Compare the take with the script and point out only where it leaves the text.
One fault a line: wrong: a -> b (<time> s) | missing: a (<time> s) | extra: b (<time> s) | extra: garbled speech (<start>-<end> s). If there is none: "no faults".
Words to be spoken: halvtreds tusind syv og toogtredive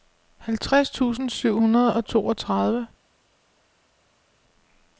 extra: hundrede (1.6 s)